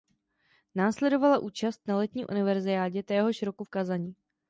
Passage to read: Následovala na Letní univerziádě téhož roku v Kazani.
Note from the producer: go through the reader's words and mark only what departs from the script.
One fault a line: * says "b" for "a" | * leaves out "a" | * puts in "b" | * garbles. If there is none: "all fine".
* puts in "účast"